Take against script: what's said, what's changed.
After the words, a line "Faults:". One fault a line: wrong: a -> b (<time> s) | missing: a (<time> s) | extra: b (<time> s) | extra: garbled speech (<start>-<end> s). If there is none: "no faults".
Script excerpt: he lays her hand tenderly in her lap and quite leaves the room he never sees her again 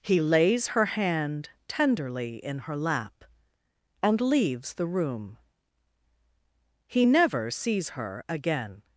he lays her hand tenderly in her lap and leaves the room he never sees her again
Faults:
missing: quite (4.2 s)